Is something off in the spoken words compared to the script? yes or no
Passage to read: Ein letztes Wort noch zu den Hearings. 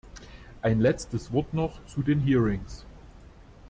no